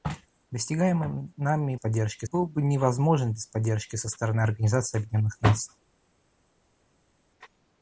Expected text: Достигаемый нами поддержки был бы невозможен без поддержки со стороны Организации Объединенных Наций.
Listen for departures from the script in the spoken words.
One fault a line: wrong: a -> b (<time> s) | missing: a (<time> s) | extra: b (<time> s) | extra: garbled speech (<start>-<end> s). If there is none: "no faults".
no faults